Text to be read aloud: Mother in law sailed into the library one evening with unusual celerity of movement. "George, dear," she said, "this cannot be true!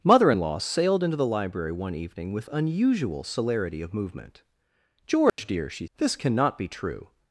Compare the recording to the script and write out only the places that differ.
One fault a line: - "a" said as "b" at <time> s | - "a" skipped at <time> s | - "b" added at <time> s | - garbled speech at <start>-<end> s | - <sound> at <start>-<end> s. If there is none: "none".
- dropout at 5.3-5.4 s
- "said" skipped at 5.9 s